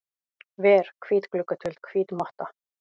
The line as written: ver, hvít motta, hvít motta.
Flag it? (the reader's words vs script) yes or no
yes